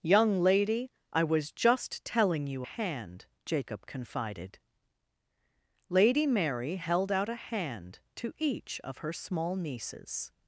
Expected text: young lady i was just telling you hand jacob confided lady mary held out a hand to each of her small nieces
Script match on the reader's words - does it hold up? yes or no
yes